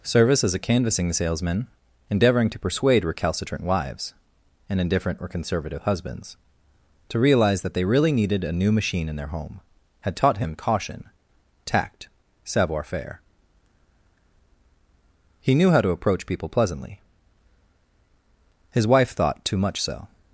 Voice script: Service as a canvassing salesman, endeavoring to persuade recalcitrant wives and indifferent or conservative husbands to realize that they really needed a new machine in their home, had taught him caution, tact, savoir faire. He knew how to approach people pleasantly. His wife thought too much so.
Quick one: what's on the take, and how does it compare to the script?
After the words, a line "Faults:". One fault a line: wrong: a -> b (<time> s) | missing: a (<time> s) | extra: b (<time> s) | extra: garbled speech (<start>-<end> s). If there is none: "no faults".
Service as a canvassing salesman, endeavoring to persuade recalcitrant wives and indifferent or conservative husbands to realize that they really needed a new machine in their home, had taught him caution, tact, savoir faire. He knew how to approach people pleasantly. His wife thought too much so.
Faults:
no faults